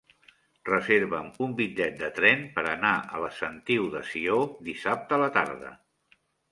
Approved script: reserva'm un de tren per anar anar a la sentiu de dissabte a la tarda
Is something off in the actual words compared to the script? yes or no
yes